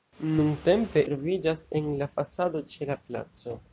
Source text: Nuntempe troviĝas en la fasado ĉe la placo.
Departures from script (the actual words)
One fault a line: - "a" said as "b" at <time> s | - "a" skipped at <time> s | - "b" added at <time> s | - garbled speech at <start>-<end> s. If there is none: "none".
none